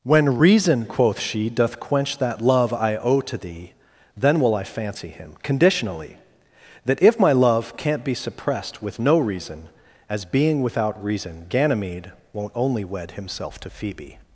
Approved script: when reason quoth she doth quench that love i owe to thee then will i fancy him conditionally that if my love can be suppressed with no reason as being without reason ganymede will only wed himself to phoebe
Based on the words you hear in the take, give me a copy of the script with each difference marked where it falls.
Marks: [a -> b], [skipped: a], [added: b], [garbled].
when reason quoth she doth quench that love i owe to thee then will i fancy him conditionally that if my love [can -> can't] be suppressed with no reason as being without reason ganymede [will -> won't] only wed himself to phoebe